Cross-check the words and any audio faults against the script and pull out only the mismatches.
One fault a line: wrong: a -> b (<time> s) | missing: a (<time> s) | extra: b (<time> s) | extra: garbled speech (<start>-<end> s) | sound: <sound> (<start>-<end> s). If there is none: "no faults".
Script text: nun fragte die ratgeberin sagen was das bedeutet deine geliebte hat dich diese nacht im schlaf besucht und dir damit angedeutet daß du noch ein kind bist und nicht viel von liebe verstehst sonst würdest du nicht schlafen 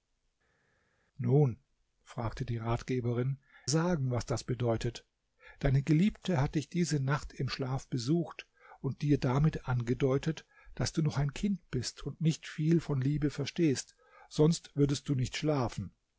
no faults